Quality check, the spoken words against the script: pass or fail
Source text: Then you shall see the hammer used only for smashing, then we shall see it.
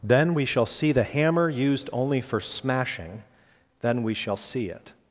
fail